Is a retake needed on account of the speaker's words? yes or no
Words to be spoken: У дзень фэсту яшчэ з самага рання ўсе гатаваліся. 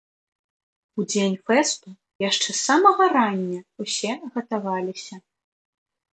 no